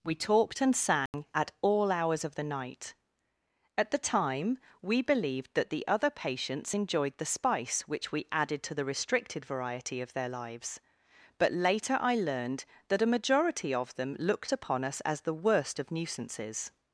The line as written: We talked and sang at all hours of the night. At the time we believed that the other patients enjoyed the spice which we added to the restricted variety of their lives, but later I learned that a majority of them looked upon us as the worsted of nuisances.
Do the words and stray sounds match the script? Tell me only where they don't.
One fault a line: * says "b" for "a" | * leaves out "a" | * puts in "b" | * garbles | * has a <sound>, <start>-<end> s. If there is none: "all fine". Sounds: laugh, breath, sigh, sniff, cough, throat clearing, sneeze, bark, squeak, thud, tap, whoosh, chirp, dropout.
* has a dropout, 1.1-1.1 s
* says "worst" for "worsted"